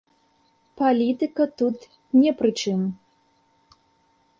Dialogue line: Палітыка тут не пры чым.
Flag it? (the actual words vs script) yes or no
no